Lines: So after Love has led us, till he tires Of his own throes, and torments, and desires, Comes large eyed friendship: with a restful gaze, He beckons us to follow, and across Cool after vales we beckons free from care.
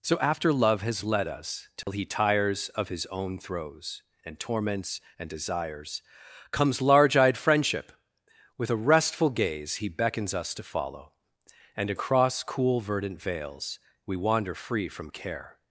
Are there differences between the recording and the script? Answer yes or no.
yes